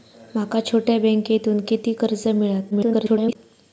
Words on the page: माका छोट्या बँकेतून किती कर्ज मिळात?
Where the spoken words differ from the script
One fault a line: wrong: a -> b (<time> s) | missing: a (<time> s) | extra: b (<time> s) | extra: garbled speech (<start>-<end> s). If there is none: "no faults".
extra: garbled speech (2.7-3.4 s)